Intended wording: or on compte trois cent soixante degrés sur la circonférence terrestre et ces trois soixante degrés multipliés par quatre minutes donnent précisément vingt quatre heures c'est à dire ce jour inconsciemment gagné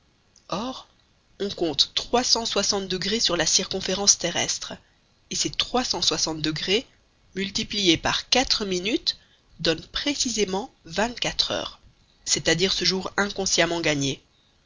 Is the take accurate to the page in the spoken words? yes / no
no